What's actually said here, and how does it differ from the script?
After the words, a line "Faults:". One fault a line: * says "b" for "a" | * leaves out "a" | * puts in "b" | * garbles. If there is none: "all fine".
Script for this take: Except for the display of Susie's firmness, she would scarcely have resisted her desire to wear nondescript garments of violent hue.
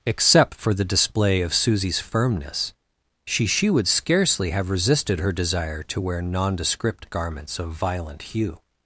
Except for the display of Susie's firmness, she she would scarcely have resisted her desire to wear nondescript garments of violent hue.
Faults:
* puts in "she"